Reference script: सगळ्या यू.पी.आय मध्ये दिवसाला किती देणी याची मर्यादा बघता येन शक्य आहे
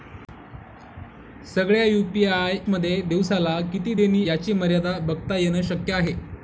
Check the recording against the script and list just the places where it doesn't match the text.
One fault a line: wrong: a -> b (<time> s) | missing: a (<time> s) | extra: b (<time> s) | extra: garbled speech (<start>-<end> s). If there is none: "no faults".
no faults